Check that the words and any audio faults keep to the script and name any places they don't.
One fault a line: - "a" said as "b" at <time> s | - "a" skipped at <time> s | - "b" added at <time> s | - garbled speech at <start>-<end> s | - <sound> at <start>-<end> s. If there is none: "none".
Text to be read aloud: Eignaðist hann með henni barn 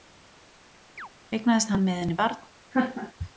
- chirp at 1.0-1.1 s
- laugh at 2.7-3.1 s